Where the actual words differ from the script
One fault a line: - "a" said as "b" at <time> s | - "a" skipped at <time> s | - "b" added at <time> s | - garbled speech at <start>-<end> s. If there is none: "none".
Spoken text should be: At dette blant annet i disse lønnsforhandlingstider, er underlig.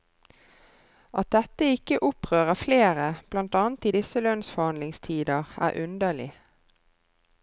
- "ikke opprører flere" added at 1.7 s